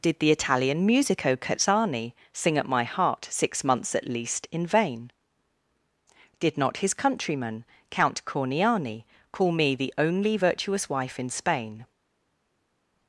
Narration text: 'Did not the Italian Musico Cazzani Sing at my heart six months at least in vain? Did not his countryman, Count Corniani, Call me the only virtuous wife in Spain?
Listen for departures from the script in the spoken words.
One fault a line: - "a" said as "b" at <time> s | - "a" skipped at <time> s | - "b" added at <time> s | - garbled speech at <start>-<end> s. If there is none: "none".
- "not" skipped at 0.2 s